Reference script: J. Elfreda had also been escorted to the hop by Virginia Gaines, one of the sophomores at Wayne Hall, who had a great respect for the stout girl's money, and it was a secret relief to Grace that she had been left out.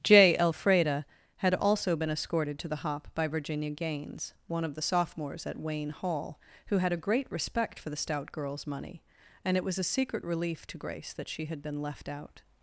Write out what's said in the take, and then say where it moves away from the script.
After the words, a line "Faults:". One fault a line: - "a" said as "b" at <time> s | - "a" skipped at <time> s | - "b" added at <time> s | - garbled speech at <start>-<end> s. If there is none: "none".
J. Elfreda had also been escorted to the hop by Virginia Gaines, one of the sophomores at Wayne Hall, who had a great respect for the stout girl's money, and it was a secret relief to Grace that she had been left out.
Faults:
none